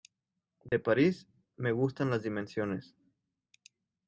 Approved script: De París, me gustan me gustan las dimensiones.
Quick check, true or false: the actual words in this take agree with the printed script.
false